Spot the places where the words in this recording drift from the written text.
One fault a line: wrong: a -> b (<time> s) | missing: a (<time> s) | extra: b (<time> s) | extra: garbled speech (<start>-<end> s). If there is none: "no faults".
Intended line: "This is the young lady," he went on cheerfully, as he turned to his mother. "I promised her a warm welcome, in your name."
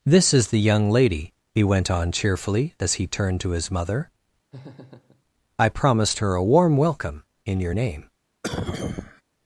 no faults